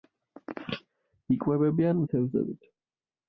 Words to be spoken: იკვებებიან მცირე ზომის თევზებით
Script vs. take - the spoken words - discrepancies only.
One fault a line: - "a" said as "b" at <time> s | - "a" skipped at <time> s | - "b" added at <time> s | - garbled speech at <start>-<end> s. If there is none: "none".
- "მცირე ზომის" skipped at 2.0 s